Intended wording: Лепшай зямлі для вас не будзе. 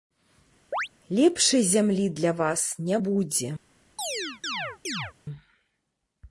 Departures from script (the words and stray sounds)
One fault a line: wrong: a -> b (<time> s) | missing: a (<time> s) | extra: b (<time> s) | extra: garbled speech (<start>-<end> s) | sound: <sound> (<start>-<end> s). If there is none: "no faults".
sound: chirp (0.7-0.9 s)
sound: chirp (4.0-5.1 s)